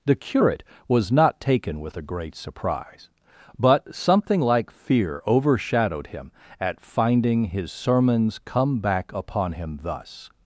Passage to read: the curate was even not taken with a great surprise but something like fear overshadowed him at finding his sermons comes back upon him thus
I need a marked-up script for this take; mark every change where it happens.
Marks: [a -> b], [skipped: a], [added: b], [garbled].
the curate was [skipped: even] not taken with a great surprise but something like fear overshadowed him at finding his sermons [comes -> come] back upon him thus